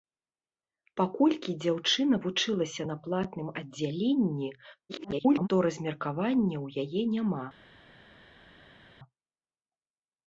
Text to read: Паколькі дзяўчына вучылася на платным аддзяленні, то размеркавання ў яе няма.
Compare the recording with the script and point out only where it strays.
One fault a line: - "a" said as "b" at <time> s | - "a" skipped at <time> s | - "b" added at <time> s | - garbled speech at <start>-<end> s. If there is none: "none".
- garbled speech at 4.9-5.5 s